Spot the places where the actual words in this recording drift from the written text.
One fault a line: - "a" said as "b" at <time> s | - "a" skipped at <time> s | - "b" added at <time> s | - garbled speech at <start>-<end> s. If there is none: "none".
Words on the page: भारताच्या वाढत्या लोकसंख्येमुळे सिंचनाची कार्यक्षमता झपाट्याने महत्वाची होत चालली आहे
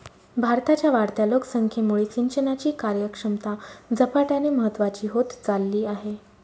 none